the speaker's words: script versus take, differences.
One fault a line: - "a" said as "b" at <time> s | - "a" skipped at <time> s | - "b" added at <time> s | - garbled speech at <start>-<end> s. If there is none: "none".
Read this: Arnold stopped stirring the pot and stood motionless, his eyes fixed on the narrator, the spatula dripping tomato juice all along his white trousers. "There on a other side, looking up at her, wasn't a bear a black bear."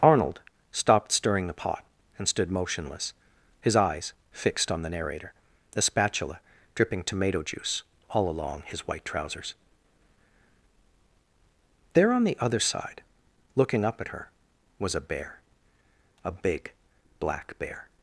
- "a" said as "the" at 12.2 s
- "wasn't" said as "was" at 14.8 s
- "big" added at 16.3 s